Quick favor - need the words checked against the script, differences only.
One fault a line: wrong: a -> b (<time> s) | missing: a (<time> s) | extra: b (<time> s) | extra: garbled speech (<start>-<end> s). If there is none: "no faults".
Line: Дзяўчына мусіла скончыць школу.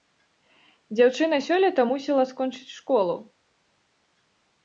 extra: сёлета (1.5 s)